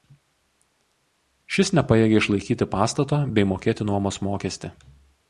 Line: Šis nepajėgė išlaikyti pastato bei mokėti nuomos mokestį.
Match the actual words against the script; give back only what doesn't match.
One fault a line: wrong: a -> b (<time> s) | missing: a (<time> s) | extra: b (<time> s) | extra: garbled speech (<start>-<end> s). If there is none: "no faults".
no faults